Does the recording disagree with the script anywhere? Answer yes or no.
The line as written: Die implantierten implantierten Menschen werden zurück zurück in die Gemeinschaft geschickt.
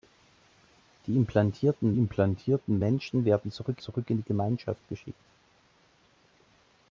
no